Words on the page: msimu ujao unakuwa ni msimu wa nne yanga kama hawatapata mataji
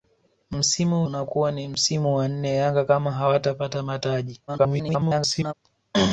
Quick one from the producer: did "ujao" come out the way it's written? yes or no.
no